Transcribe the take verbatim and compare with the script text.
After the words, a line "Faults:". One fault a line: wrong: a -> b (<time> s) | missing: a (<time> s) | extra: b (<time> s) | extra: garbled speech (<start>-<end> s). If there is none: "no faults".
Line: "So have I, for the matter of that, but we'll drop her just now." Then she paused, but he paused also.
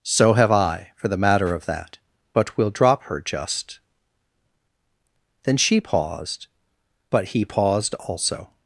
"So have I, for the matter of that, but we'll drop her just." Then she paused, but he paused also.
Faults:
missing: now (3.8 s)